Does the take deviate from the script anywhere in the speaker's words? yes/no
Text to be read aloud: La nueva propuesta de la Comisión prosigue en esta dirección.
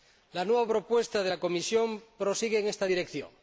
no